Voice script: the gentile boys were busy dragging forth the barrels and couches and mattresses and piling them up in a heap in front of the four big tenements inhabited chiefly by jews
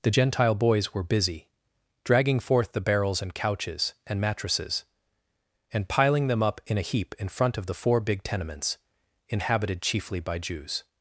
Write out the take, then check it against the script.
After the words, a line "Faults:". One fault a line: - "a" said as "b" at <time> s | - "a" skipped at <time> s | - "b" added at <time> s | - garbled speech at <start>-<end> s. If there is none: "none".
the gentile boys were busy dragging forth the barrels and couches and mattresses and piling them up in a heap in front of the four big tenements inhabited chiefly by jews
Faults:
none